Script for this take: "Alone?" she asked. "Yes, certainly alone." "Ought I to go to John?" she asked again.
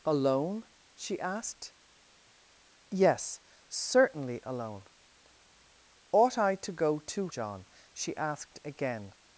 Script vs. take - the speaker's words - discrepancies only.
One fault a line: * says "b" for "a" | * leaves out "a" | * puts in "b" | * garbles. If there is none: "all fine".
all fine